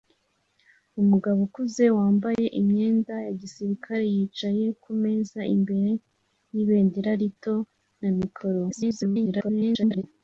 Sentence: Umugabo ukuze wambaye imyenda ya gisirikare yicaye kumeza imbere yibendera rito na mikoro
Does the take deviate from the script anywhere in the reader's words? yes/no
yes